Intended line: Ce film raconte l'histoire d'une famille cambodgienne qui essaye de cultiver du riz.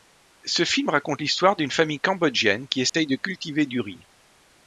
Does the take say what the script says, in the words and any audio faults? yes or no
no